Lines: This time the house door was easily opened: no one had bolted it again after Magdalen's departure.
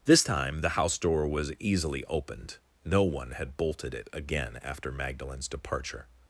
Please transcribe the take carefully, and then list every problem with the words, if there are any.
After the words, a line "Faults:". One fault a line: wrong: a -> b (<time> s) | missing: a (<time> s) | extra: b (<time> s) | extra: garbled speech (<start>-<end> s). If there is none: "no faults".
This time the house door was easily opened: no one had bolted it again after Magdalen's departure.
Faults:
no faults